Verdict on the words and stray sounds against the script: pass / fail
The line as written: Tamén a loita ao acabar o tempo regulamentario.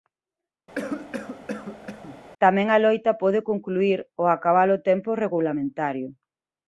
fail